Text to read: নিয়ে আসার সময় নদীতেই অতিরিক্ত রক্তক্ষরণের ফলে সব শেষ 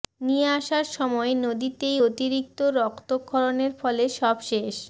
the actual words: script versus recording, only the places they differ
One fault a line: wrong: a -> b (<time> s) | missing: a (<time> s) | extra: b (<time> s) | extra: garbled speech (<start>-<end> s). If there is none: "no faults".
no faults